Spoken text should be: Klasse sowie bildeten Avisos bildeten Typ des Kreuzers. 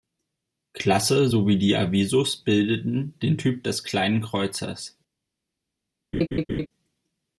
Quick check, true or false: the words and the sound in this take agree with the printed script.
false